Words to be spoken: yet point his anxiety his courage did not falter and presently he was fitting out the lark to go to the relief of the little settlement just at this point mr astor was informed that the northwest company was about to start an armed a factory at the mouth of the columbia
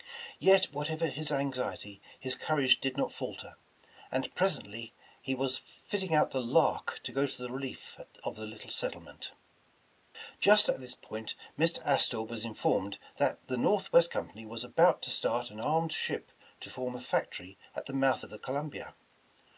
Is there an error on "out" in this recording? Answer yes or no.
no